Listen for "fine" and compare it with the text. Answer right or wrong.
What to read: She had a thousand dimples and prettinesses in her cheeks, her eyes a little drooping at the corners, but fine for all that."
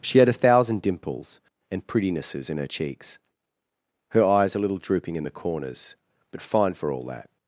right